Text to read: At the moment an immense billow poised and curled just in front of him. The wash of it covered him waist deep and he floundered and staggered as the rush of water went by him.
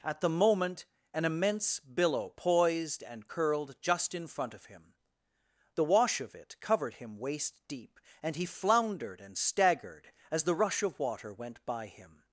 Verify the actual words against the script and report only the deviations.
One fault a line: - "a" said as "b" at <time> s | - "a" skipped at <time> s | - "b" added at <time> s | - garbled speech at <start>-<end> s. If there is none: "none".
none